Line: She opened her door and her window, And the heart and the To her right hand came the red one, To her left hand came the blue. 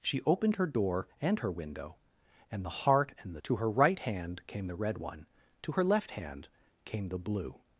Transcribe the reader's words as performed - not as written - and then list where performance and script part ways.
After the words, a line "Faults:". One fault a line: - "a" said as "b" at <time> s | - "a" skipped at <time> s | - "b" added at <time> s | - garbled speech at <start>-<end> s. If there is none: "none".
She opened her door and her window, And the heart and the To her right hand came the red one, To her left hand came the blue.
Faults:
none